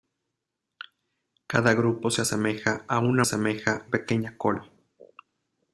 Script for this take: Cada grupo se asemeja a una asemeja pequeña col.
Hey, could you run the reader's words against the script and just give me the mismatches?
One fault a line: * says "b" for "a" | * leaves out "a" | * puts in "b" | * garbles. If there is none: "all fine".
all fine